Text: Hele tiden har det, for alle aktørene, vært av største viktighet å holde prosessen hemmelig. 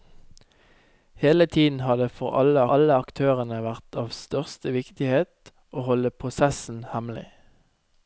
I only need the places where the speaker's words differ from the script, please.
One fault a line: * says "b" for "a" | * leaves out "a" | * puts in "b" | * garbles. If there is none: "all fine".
* puts in "alle"